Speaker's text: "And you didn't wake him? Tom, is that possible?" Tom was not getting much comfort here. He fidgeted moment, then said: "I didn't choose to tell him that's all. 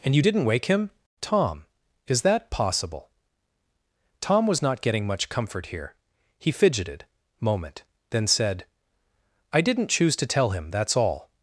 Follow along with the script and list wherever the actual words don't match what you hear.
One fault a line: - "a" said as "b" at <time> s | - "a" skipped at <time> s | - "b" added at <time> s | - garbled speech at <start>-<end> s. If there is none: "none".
none